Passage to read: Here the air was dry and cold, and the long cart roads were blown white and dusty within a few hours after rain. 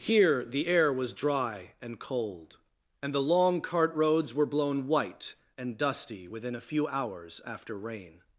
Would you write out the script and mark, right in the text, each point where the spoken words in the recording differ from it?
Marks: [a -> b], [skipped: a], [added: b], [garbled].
Here the air was dry and cold, and the long cart roads were blown white and dusty within a few hours after rain.